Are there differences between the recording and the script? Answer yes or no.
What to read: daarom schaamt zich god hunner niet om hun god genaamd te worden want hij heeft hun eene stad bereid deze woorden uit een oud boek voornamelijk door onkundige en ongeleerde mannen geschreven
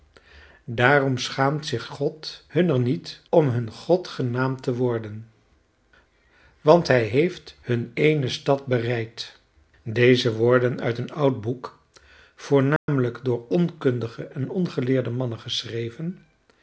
no